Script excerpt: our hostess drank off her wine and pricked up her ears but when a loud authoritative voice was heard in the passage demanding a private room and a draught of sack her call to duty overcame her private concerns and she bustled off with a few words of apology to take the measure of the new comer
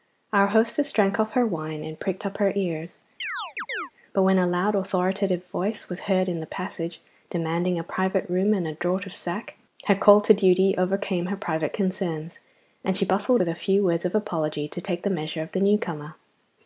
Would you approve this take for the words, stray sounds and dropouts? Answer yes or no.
no